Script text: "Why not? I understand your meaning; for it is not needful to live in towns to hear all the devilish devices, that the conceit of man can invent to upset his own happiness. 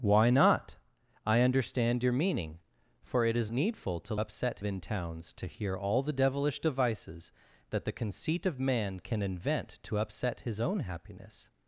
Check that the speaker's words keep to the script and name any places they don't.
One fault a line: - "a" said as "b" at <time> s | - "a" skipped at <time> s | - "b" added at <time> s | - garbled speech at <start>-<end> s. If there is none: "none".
- "not" skipped at 3.5 s
- "live" said as "upset" at 4.2 s